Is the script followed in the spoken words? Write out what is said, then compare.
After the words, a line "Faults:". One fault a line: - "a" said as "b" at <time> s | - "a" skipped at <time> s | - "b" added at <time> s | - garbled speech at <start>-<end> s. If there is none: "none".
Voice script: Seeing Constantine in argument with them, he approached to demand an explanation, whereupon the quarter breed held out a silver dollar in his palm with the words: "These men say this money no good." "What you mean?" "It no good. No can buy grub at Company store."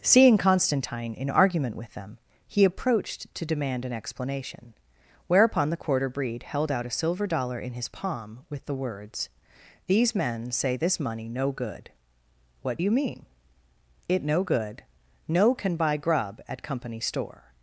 Seeing Constantine in argument with them, he approached to demand an explanation, whereupon the quarter breed held out a silver dollar in his palm with the words: "These men say this money no good." "What you mean?" "It no good. No can buy grub at Company store."
Faults:
none